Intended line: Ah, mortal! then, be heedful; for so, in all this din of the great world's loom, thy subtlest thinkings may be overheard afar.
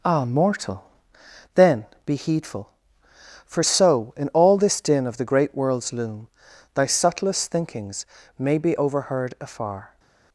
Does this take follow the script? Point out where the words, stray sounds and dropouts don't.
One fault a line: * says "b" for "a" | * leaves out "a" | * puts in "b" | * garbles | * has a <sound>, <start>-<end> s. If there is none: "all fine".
all fine